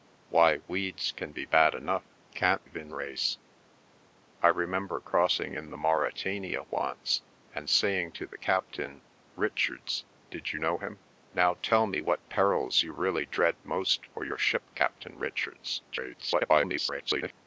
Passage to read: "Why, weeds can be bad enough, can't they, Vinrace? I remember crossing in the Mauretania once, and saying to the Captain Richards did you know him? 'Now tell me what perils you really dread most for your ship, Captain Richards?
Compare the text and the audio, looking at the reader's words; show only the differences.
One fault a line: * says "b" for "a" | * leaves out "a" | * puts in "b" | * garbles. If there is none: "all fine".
* leaves out "they"
* garbles